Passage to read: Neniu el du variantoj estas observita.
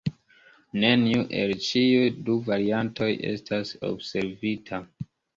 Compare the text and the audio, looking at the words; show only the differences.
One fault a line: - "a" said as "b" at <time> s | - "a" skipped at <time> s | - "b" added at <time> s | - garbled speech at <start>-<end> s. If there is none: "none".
- "ĉiuj" added at 1.6 s